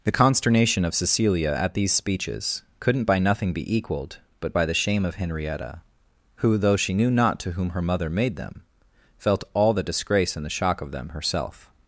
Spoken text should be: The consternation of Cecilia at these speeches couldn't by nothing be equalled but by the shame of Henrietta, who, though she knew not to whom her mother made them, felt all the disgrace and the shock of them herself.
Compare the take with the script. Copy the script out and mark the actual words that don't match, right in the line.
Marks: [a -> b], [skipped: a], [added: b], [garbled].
The consternation of Cecilia at these speeches couldn't by nothing be equalled but by the shame of Henrietta, who, though she knew not to whom her mother made them, felt all the disgrace and the shock of them herself.